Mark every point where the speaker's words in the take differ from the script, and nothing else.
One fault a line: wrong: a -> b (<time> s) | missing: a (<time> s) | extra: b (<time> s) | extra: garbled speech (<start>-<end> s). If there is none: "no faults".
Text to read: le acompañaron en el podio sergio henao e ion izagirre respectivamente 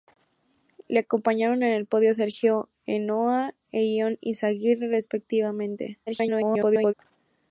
extra: garbled speech (6.1-6.9 s)